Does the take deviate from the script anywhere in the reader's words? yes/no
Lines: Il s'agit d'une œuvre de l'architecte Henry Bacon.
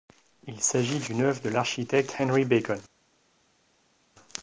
no